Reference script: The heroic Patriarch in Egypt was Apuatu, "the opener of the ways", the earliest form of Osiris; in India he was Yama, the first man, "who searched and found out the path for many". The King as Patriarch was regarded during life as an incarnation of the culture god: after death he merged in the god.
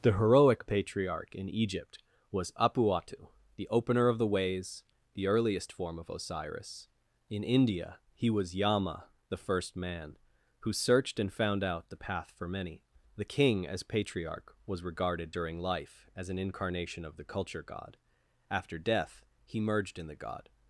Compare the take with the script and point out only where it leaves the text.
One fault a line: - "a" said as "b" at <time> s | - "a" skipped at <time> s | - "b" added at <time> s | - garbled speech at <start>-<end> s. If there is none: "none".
none